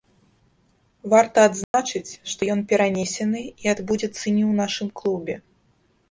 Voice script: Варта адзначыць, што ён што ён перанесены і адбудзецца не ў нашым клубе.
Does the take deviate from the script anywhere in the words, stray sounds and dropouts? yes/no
yes